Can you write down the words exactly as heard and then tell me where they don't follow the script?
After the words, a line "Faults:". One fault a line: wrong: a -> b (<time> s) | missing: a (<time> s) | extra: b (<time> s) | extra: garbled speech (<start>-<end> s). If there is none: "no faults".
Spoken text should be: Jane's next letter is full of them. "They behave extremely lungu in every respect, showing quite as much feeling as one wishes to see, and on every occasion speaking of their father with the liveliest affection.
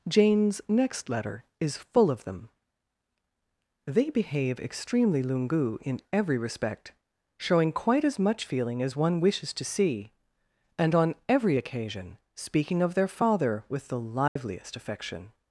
Jane's next letter is full of them. "They behave extremely lungu in every respect, showing quite as much feeling as one wishes to see, and on every occasion speaking of their father with the liveliest affection.
Faults:
no faults